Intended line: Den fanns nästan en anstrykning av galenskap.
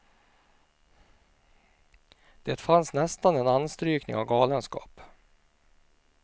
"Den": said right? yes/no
no